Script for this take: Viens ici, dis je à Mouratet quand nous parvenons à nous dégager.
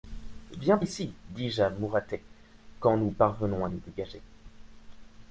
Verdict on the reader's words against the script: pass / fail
pass